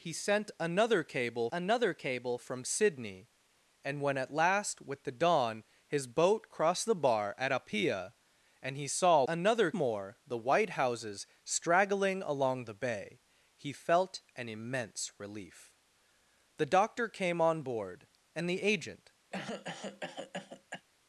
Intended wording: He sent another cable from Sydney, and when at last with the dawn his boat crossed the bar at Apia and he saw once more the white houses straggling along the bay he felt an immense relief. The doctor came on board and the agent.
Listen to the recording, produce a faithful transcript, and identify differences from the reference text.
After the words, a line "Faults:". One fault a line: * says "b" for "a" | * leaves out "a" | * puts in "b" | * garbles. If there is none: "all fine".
He sent another cable another cable from Sydney, and when at last with the dawn his boat crossed the bar at Apia and he saw another more the white houses straggling along the bay he felt an immense relief. The doctor came on board and the agent.
Faults:
* puts in "another cable"
* says "another" for "once"